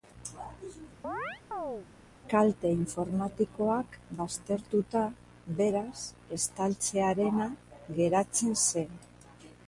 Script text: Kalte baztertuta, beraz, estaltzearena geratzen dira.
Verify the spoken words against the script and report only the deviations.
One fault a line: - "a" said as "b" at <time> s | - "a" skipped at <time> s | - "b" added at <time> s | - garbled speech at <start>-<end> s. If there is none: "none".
- "informatikoak" added at 2.8 s
- "dira" said as "zen" at 8.7 s